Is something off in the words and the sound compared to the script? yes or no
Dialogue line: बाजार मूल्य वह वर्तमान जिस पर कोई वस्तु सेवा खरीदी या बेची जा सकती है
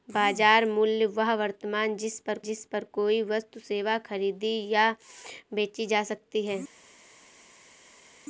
yes